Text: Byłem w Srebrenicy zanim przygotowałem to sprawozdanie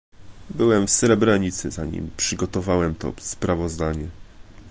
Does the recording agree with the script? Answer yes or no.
yes